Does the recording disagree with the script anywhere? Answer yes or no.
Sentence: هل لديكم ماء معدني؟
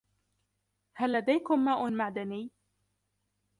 no